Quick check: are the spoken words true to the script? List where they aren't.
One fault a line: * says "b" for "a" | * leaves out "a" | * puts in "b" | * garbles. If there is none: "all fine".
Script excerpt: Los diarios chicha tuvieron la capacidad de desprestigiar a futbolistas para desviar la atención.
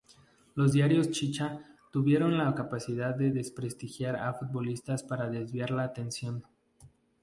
all fine